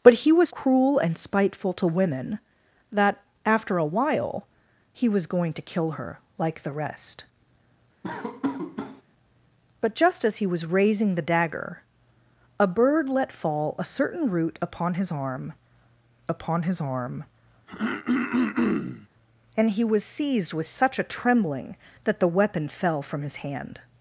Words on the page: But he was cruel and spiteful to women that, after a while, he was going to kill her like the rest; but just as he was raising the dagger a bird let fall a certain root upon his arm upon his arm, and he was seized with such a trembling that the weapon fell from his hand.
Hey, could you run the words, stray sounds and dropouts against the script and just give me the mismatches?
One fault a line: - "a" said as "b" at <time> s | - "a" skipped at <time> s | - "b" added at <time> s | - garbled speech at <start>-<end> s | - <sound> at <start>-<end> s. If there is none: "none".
- laugh at 8.0-9.0 s
- throat clearing at 17.7-19.1 s